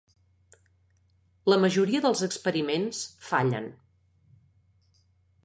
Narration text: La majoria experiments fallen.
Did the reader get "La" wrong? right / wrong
right